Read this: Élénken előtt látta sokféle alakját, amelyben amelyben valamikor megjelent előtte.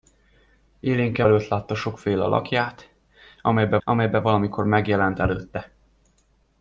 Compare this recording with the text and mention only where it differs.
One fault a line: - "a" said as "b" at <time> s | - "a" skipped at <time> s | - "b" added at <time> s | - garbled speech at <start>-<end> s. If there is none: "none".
none